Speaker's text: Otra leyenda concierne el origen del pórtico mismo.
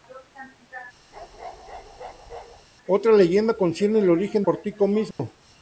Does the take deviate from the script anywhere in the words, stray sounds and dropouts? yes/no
yes